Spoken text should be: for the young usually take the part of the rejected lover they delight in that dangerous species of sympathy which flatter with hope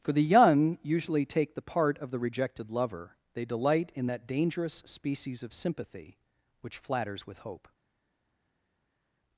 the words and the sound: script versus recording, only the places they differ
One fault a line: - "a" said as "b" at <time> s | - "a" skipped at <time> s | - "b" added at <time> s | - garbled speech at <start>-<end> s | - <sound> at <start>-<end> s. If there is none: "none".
- "flatter" said as "flatters" at 6.8 s